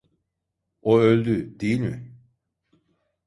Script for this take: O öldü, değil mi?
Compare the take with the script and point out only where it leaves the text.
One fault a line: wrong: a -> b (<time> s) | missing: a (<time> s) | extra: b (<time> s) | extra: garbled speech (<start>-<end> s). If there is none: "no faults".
no faults